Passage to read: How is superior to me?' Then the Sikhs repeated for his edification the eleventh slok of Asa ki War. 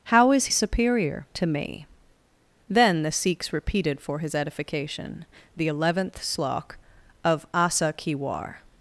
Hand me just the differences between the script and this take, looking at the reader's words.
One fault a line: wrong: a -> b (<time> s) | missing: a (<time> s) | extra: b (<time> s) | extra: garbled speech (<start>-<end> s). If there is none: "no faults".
no faults